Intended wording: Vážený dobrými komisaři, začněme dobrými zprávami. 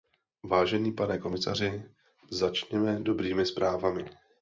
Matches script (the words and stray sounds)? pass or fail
fail